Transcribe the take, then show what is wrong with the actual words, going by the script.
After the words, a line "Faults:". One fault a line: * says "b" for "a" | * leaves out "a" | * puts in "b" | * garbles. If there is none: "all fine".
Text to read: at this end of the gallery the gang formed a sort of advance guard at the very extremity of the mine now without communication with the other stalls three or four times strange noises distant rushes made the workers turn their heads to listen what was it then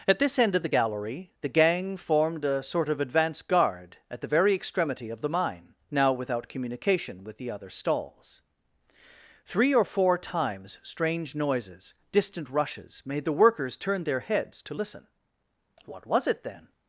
at this end of the gallery the gang formed a sort of advance guard at the very extremity of the mine now without communication with the other stalls three or four times strange noises distant rushes made the workers turn their heads to listen what was it then
Faults:
all fine